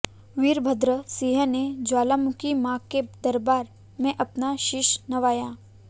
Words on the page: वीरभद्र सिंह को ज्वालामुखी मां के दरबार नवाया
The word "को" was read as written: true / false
false